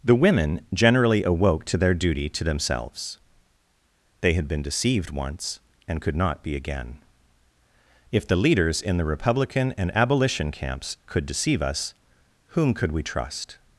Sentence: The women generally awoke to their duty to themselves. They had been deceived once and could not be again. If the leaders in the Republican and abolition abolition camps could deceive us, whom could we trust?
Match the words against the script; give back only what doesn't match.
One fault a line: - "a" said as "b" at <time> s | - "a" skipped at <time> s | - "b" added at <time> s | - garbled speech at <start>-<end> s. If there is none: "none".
- "abolition" skipped at 10.5 s